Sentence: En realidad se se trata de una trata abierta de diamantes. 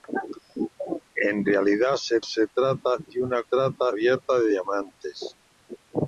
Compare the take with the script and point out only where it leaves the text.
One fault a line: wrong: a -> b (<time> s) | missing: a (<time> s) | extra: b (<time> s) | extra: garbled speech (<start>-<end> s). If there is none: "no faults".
no faults